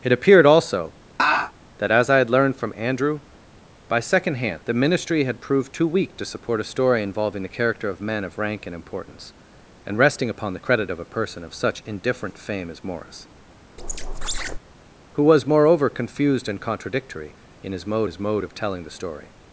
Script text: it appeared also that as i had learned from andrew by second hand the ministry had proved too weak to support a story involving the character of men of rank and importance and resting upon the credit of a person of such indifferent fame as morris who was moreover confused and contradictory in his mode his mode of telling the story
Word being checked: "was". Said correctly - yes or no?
yes